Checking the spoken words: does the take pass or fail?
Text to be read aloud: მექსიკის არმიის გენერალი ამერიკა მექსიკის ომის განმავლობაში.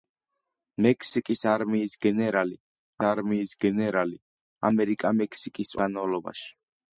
fail